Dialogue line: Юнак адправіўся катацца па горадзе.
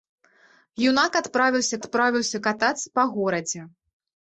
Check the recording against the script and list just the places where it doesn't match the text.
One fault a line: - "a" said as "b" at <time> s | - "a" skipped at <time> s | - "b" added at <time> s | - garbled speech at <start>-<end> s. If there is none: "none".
- "адправіўся" added at 1.8 s